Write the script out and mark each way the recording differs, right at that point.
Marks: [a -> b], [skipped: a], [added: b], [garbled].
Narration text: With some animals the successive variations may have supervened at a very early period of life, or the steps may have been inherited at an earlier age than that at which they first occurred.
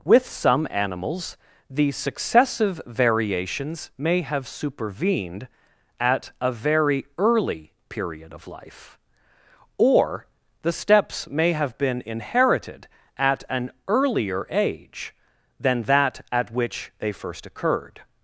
With some animals the successive variations may have supervened at a very early period of life, or the steps may have been inherited at an earlier age than that at which they first occurred.